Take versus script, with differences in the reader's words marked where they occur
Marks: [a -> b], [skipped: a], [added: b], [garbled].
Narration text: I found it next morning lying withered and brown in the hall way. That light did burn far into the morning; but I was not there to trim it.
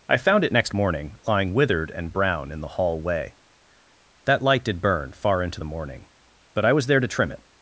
I found it next morning lying withered and brown in the hall way. That light did burn far into the morning; but I was [skipped: not] there to trim it.